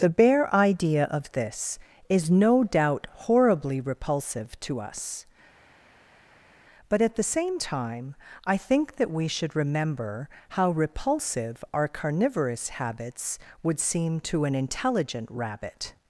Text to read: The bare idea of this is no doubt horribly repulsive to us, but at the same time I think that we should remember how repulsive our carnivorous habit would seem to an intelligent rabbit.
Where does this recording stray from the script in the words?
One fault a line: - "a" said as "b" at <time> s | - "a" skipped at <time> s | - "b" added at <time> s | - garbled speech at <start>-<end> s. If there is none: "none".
- "habit" said as "habits" at 12.7 s